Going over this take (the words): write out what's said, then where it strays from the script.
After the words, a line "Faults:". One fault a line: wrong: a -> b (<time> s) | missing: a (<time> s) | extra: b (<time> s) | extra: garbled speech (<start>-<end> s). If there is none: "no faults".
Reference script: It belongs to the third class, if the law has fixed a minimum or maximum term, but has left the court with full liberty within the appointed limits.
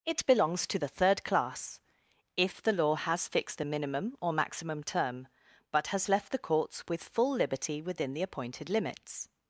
It belongs to the third class, if the law has fixed a minimum or maximum term, but has left the courts with full liberty within the appointed limits.
Faults:
wrong: court -> courts (6.4 s)